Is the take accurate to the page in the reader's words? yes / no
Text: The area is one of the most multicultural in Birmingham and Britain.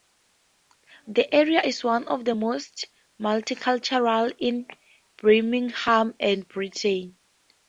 yes